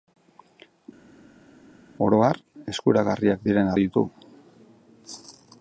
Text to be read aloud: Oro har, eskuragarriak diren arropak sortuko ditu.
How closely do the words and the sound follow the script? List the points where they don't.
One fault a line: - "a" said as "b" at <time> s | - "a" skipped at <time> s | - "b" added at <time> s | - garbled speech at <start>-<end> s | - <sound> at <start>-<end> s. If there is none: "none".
- "arropak sortuko" skipped at 3.7 s